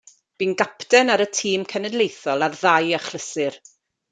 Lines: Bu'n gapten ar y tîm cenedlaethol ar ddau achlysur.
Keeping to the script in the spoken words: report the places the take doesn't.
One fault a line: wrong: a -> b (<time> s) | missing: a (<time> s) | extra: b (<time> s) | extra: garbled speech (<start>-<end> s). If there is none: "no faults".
no faults